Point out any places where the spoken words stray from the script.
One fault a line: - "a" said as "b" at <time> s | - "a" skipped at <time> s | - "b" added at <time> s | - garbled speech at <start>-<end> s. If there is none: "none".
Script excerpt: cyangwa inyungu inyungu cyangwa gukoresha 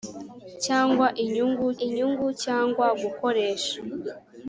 none